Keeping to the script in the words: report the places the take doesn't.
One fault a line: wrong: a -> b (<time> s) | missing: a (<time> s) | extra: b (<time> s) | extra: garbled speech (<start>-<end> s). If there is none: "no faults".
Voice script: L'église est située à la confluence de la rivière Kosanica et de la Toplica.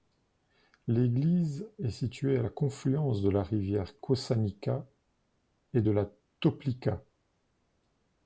no faults